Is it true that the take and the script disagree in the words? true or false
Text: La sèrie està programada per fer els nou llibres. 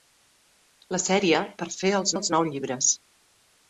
true